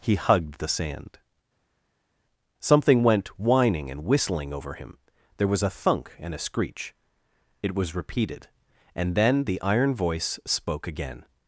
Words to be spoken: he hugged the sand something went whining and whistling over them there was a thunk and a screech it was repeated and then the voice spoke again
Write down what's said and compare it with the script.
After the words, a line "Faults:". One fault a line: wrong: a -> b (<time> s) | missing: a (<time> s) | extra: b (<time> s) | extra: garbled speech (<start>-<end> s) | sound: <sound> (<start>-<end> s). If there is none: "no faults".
he hugged the sand something went whining and whistling over him there was a thunk and a screech it was repeated and then the iron voice spoke again
Faults:
wrong: them -> him (4.7 s)
extra: iron (9.6 s)